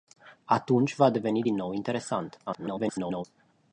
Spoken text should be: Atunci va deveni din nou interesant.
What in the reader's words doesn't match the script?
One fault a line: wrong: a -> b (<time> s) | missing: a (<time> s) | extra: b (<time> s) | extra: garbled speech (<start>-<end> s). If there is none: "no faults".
extra: garbled speech (2.5-3.3 s)